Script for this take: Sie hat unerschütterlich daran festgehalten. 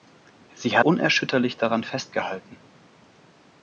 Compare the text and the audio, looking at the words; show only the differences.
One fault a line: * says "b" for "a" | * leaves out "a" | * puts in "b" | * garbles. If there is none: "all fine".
* leaves out "hat"